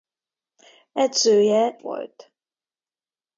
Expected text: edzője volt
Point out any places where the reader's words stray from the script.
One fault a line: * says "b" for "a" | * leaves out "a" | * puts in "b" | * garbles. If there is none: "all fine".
all fine